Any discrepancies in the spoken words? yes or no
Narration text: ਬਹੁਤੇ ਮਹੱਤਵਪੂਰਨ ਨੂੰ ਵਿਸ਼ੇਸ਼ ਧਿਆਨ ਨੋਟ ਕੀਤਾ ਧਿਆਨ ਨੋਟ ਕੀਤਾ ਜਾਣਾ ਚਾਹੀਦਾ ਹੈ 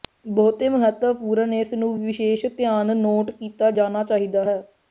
yes